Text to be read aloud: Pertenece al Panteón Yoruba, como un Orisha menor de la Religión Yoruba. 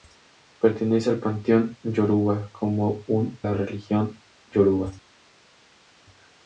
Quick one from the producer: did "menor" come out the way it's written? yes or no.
no